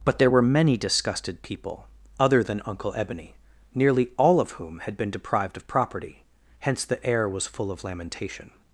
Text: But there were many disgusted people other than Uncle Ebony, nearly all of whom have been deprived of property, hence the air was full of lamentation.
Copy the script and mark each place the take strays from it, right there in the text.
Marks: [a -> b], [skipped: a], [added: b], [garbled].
But there were many disgusted people other than Uncle Ebony, nearly all of whom [have -> had] been deprived of property, hence the air was full of lamentation.